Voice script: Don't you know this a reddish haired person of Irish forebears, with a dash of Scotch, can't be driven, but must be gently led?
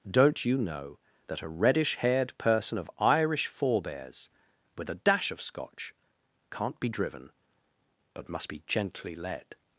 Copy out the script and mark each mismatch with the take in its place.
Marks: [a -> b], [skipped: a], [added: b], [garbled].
Don't you know [this -> that] a reddish haired person of Irish forebears, with a dash of Scotch, can't be driven, but must be gently led?